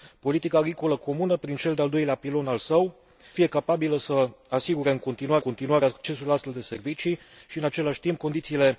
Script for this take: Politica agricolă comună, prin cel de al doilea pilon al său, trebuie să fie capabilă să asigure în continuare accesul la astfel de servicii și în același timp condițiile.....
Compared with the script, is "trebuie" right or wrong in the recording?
wrong